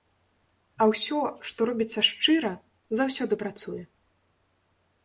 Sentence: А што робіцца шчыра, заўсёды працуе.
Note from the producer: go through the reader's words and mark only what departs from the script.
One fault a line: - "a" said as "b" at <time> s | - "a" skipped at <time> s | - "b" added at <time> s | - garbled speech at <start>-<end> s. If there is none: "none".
- "ўсё" added at 0.9 s